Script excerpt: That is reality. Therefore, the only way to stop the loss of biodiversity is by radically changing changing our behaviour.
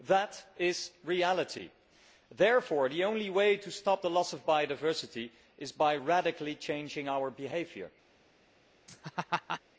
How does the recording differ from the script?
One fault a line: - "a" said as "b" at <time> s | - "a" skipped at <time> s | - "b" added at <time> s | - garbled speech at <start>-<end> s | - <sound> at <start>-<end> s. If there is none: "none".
- "changing" skipped at 7.1 s
- laugh at 8.9-9.6 s